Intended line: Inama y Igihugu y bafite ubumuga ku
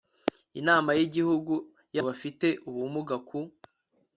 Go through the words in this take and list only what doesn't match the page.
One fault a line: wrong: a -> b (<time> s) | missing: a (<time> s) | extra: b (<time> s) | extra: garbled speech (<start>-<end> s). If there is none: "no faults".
no faults